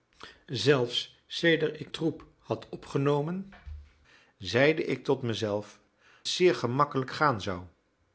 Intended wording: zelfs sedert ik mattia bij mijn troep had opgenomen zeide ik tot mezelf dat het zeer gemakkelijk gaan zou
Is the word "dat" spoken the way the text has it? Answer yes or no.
no